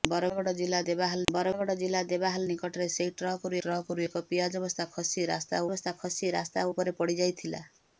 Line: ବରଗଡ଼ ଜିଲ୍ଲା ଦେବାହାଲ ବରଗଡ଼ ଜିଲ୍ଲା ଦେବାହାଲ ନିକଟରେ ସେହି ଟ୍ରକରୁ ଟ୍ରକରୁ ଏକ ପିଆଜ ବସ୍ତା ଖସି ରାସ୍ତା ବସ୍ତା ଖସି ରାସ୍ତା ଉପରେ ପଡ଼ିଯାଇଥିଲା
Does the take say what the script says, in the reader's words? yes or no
yes